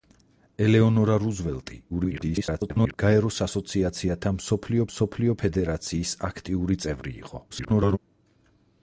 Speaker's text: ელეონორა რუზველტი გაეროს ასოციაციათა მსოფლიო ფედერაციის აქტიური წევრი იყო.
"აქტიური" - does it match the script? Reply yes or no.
yes